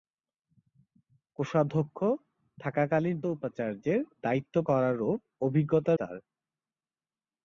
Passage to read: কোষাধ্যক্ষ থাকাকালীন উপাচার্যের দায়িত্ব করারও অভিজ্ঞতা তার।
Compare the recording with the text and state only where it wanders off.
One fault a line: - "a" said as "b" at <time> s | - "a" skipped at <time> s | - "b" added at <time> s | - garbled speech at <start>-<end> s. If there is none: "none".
none